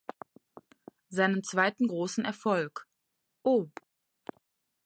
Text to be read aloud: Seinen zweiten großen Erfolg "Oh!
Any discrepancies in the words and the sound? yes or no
no